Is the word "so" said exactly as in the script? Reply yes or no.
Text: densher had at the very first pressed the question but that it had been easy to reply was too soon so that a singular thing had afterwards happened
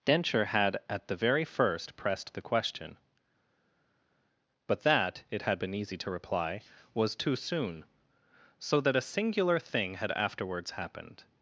yes